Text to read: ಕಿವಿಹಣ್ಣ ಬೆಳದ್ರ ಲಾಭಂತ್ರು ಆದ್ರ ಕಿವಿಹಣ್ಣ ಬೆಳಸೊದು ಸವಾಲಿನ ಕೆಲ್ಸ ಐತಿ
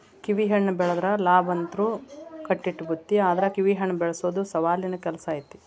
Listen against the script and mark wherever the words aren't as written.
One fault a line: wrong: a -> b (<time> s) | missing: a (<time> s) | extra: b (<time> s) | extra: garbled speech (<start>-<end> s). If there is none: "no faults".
extra: ಕಟ್ಟಿಟ್ಟ ಬುತ್ತಿ (2.5 s)